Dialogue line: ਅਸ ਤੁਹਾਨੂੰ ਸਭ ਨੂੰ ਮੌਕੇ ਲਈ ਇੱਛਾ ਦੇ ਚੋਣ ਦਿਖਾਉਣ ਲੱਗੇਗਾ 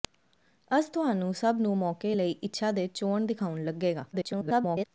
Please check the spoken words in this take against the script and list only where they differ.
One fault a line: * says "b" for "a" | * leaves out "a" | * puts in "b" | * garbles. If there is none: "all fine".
* garbles